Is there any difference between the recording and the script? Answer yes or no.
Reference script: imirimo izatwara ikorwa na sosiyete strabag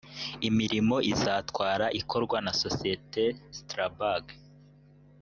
no